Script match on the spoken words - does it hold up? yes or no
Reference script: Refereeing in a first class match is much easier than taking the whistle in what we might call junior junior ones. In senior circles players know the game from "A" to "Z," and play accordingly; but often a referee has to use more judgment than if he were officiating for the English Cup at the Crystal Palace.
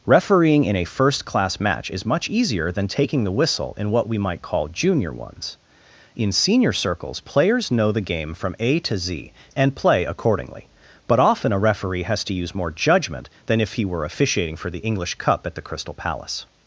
no